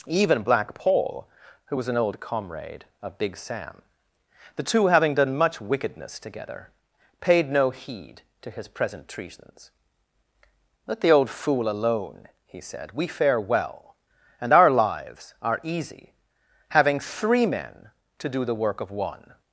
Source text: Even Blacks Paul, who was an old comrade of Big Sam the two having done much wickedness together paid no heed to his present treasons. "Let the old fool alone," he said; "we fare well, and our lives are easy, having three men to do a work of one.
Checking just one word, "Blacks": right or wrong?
wrong